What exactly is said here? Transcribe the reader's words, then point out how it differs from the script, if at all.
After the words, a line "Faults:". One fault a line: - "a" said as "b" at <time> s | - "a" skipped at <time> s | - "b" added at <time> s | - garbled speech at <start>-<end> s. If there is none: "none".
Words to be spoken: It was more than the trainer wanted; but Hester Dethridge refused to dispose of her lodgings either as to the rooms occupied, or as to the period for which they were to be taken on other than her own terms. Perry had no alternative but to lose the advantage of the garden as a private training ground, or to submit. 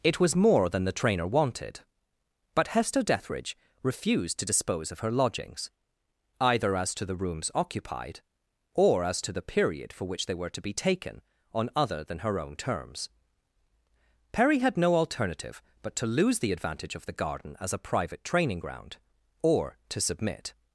It was more than the trainer wanted; but Hester Dethridge refused to dispose of her lodgings either as to the rooms occupied, or as to the period for which they were to be taken on other than her own terms. Perry had no alternative but to lose the advantage of the garden as a private training ground, or to submit.
Faults:
none